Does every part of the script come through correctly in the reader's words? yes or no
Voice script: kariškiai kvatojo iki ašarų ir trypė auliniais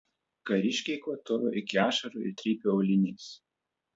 yes